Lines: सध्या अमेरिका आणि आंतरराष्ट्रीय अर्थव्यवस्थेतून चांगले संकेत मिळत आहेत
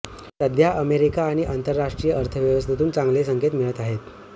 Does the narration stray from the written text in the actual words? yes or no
no